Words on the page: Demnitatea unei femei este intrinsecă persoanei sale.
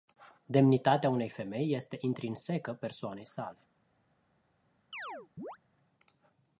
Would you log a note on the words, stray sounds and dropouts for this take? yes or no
yes